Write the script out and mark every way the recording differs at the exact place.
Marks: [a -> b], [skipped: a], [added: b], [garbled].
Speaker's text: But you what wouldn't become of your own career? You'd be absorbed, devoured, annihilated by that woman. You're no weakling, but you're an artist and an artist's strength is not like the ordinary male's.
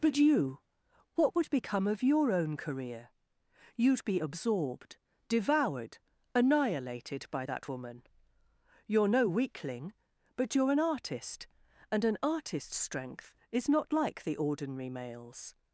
But you what [wouldn't -> would] become of your own career? You'd be absorbed, devoured, annihilated by that woman. You're no weakling, but you're an artist and an artist's strength is not like the ordinary male's.